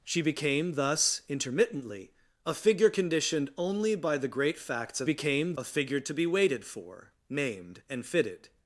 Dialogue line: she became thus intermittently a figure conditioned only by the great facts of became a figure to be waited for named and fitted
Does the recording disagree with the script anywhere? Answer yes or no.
no